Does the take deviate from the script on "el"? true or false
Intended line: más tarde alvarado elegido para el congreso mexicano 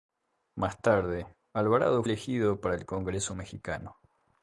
false